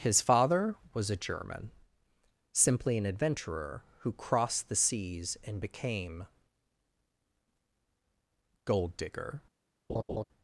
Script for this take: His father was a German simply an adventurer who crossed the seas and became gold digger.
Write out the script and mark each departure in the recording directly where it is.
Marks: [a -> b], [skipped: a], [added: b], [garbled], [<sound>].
His father was a German simply an adventurer who crossed the seas and became gold digger. [laugh]